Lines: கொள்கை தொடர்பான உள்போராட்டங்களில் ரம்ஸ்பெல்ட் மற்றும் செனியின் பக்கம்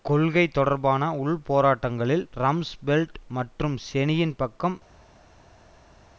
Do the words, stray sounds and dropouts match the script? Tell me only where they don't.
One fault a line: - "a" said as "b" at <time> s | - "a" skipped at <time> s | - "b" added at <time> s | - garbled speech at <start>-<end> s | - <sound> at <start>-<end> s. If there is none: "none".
none